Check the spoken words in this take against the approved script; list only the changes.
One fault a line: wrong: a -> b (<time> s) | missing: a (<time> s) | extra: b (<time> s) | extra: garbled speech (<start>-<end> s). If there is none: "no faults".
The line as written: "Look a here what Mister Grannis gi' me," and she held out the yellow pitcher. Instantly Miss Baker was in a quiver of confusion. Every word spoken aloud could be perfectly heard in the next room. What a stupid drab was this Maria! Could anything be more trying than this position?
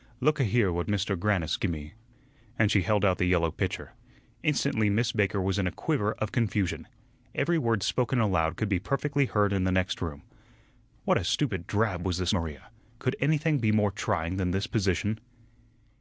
no faults